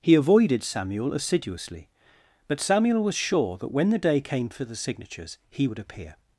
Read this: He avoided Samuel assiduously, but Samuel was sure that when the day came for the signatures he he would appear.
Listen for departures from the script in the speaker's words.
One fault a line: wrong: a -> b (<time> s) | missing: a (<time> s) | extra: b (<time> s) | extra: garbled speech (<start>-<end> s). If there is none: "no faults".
missing: he (5.7 s)